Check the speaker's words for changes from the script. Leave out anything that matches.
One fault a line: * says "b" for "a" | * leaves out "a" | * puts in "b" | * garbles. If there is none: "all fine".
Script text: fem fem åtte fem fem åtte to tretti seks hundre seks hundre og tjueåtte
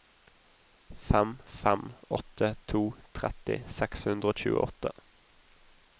* leaves out "fem fem åtte"
* leaves out "seks hundre"